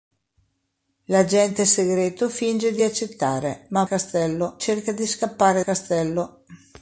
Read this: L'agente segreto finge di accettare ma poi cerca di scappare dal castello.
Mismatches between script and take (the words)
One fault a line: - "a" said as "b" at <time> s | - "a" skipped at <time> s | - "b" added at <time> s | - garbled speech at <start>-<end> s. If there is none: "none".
- "poi" said as "castello" at 3.8 s
- "dal" skipped at 5.6 s